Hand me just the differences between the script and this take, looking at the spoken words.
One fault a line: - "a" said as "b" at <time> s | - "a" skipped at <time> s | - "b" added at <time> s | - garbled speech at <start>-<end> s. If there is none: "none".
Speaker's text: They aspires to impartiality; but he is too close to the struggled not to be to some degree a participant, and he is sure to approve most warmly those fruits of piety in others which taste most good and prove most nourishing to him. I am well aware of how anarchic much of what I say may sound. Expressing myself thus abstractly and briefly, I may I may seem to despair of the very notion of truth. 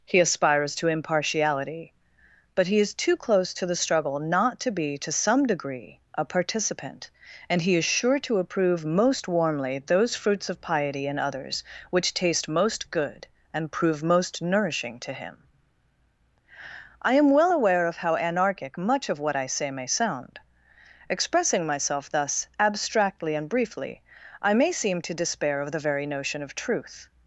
- "They" said as "He" at 0.0 s
- "struggled" said as "struggle" at 3.8 s
- "I may" skipped at 24.7 s